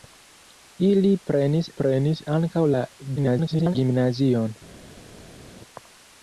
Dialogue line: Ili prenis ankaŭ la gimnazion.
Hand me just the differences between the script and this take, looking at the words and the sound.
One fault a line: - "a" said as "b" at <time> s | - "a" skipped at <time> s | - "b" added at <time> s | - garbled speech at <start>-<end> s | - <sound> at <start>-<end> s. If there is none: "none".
- "prenis" added at 1.8 s
- garbled speech at 3.2-3.8 s